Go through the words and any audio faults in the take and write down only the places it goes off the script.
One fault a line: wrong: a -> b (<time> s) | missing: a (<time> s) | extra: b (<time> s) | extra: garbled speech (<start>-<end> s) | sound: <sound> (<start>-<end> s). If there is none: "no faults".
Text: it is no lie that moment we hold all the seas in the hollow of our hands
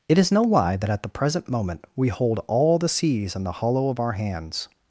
extra: at the present (0.9 s)